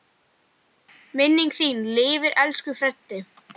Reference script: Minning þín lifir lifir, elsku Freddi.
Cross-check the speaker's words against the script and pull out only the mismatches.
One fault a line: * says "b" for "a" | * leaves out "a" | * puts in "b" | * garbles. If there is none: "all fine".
* leaves out "lifir"